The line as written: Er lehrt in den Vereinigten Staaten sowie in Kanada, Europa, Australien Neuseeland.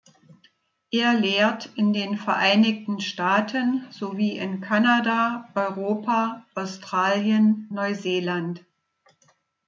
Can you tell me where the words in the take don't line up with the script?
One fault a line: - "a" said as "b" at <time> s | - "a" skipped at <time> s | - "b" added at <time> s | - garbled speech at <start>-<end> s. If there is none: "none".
none